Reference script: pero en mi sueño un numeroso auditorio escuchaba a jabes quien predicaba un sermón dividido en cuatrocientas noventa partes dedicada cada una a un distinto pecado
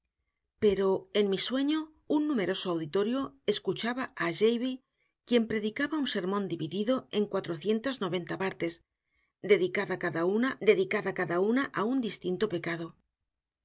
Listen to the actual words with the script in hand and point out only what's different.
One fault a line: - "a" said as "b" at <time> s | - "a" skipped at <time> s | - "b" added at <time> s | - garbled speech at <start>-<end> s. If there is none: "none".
- "dedicada cada una" added at 10.7 s